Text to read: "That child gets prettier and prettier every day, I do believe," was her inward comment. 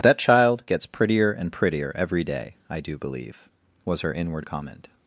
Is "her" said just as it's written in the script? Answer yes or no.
yes